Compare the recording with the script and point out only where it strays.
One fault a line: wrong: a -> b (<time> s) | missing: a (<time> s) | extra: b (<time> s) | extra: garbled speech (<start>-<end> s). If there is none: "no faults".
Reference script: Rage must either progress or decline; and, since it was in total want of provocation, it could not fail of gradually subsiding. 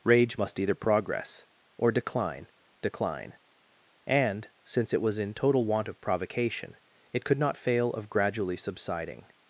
extra: decline (2.8 s)